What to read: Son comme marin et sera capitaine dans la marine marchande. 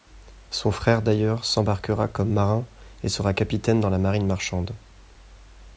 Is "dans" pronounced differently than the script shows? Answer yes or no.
no